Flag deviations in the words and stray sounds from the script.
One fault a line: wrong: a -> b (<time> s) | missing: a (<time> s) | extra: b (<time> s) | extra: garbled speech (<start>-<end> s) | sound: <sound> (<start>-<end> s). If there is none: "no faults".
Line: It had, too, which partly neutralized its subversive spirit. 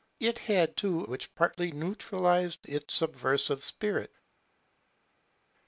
no faults